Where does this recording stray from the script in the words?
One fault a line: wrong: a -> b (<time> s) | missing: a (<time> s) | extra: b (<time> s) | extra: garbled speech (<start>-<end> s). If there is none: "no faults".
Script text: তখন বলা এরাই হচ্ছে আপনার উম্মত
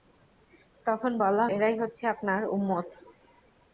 no faults